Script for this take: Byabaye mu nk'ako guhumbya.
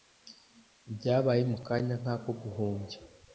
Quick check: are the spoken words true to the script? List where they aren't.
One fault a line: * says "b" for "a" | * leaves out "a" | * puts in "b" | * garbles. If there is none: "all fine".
* puts in "kanya"